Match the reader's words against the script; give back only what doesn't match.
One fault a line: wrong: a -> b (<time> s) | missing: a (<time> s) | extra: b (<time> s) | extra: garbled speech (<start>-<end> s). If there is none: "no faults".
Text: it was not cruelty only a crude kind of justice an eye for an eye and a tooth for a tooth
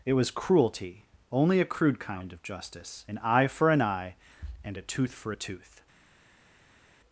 missing: not (0.3 s)